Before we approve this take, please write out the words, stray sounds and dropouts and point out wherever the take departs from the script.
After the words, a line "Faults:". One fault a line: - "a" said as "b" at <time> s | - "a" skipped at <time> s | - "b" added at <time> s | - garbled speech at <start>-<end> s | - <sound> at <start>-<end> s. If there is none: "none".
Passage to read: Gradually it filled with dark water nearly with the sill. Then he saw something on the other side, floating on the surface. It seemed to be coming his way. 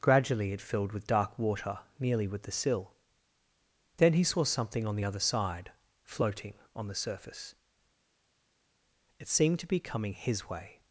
Gradually it filled with dark water nearly with the sill. Then he saw something on the other side, floating on the surface. It seemed to be coming his way.
Faults:
none